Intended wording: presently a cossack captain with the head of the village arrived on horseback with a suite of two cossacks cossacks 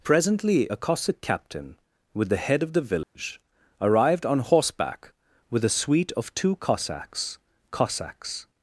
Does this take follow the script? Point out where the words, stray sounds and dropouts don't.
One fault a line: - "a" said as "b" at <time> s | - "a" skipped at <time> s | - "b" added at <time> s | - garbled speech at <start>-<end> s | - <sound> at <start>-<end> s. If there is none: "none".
- dropout at 3.0-3.2 s